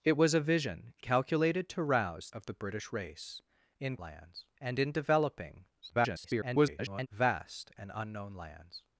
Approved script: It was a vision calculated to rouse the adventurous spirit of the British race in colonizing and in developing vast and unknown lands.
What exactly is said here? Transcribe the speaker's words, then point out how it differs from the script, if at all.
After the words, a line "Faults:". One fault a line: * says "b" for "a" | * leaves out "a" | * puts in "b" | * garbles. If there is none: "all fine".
It was a vision calculated to rouse of the British race in lands and in developing [garbled] vast and unknown lands.
Faults:
* leaves out "the adventurous spirit"
* says "lands" for "colonizing"
* garbles